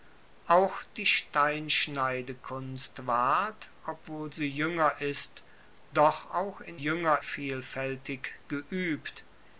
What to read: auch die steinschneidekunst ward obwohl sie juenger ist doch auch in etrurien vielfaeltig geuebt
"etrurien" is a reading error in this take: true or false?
true